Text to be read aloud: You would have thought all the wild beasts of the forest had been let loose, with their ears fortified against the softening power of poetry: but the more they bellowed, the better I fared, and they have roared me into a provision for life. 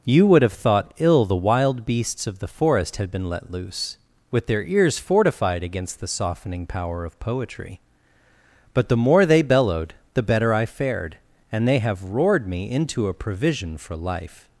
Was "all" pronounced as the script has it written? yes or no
no